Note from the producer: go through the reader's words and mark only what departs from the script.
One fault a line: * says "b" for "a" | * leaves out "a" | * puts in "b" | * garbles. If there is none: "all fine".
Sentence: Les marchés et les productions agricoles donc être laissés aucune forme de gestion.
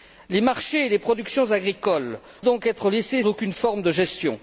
all fine